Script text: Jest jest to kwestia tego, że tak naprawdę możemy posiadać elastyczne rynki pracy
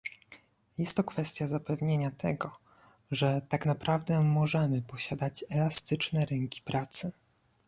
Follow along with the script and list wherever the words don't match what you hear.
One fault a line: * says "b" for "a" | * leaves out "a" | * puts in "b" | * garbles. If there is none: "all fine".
* leaves out "jest"
* puts in "zapewnienia"